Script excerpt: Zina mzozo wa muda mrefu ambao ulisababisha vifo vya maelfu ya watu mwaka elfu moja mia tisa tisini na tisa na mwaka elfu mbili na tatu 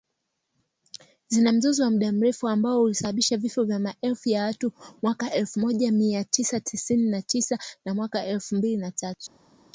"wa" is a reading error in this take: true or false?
false